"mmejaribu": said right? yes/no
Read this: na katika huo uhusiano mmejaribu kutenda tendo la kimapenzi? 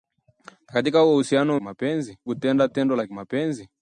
no